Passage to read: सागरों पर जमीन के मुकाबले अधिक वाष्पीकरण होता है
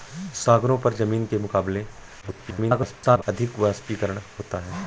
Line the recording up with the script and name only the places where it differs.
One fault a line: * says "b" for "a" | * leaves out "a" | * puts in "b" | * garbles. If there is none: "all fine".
* garbles